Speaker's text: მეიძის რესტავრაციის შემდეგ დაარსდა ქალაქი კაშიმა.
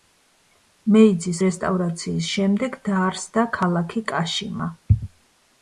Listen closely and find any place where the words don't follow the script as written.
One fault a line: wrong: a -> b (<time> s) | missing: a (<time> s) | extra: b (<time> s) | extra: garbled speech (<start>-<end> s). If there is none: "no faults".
no faults